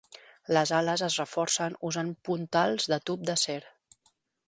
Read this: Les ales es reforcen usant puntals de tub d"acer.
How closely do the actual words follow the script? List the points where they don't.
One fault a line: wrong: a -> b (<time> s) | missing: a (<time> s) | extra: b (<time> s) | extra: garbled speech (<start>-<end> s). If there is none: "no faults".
no faults